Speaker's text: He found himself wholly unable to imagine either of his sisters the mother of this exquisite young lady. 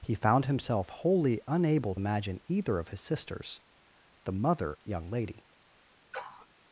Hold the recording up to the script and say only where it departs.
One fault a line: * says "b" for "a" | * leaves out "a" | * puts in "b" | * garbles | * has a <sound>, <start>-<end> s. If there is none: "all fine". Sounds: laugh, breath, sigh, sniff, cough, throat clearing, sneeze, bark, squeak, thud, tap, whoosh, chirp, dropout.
* leaves out "to"
* leaves out "of this exquisite"
* has a sniff, 6.1-6.5 s